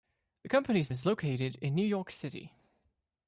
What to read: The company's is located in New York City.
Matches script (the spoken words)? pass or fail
pass